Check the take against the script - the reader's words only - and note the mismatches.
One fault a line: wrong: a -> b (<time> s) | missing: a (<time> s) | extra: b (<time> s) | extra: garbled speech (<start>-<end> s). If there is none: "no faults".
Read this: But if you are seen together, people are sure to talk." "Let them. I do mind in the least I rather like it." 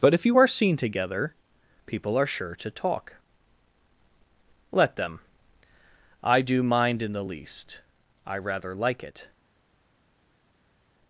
no faults